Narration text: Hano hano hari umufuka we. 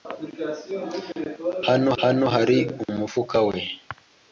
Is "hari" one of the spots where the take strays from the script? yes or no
no